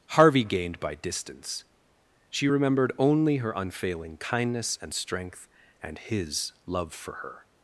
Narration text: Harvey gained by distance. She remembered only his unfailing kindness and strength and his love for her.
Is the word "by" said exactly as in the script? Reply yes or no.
yes